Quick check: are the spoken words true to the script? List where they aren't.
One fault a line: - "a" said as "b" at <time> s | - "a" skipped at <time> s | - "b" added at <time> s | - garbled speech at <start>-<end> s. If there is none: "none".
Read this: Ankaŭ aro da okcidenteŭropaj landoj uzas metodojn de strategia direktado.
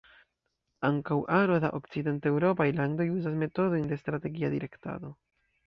none